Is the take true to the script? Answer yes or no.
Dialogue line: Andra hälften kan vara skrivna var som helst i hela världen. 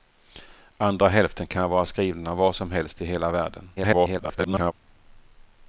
no